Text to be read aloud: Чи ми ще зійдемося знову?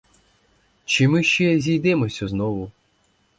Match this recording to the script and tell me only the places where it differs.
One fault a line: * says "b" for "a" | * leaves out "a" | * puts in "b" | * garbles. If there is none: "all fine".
all fine